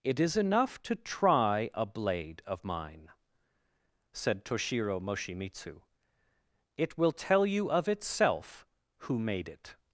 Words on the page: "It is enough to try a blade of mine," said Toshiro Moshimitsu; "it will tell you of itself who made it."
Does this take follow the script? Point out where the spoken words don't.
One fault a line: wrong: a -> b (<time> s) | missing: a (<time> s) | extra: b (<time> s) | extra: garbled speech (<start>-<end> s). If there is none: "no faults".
no faults